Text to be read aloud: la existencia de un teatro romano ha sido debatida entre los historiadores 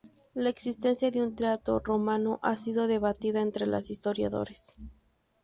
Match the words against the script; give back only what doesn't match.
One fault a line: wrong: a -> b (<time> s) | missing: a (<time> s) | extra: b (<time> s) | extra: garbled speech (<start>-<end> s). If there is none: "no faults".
no faults